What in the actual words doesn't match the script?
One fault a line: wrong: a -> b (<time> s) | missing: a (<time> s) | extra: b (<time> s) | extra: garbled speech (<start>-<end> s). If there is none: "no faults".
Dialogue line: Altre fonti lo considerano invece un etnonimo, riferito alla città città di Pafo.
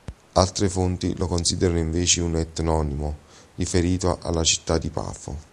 missing: città (4.8 s)